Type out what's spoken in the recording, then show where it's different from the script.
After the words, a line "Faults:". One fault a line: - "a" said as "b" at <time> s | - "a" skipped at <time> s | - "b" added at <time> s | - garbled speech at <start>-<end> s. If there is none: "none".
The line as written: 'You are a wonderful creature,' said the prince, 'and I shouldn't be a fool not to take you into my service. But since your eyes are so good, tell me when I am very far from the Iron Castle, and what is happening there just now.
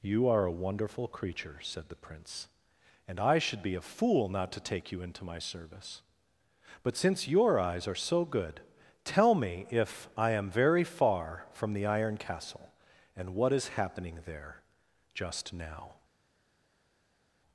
'You are a wonderful creature,' said the prince, 'and I should be a fool not to take you into my service. But since your eyes are so good, tell me if I am very far from the Iron Castle, and what is happening there just now.
Faults:
- "shouldn't" said as "should" at 3.4 s
- "when" said as "if" at 9.7 s